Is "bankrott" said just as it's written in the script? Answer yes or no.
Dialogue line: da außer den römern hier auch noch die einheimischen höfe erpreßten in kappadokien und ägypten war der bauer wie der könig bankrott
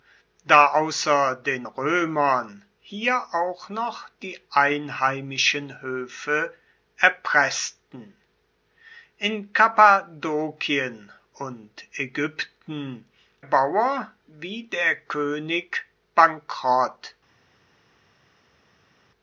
yes